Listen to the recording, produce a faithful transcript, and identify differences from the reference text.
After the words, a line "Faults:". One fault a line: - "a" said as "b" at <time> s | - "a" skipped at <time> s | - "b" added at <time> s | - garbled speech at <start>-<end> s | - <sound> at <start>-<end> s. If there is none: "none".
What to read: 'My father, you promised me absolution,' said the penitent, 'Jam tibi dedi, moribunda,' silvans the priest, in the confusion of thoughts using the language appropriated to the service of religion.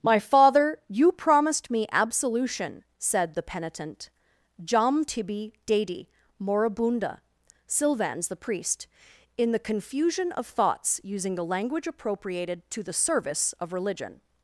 'My father, you promised me absolution,' said the penitent, 'Jam tibi dedi, moribunda,' silvans the priest, in the confusion of thoughts using the language appropriated to the service of religion.
Faults:
none